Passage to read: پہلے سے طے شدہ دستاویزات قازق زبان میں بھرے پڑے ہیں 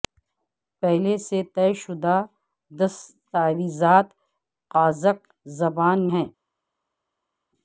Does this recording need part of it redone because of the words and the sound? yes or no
yes